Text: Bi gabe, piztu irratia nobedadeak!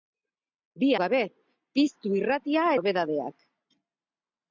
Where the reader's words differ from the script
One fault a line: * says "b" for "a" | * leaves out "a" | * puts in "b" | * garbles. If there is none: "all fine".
all fine